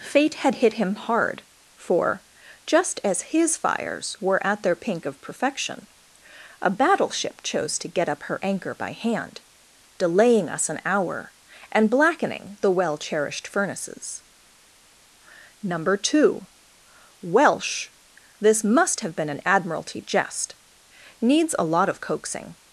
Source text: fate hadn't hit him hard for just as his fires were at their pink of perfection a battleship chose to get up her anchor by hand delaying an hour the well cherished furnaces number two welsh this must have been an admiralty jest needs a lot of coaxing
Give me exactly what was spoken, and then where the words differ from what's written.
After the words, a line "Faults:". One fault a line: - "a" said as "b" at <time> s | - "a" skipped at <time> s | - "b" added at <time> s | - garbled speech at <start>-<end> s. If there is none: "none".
fate had hit him hard for just as his fires were at their pink of perfection a battleship chose to get up her anchor by hand delaying us an hour and blackening the well cherished furnaces number two welsh this must have been an admiralty jest needs a lot of coaxing
Faults:
- "hadn't" said as "had" at 0.3 s
- "us" added at 10.5 s
- "and blackening" added at 11.7 s